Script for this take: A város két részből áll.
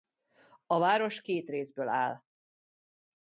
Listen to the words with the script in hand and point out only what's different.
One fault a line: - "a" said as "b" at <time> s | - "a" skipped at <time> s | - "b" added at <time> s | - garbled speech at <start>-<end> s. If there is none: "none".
none